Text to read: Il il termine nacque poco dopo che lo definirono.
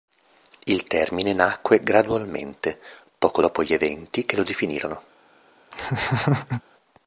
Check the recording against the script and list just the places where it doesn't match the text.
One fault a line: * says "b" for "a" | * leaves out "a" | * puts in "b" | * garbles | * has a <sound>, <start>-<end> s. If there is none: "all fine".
* leaves out "il"
* puts in "gradualmente"
* puts in "gli eventi"
* has a laugh, 5.7-6.6 s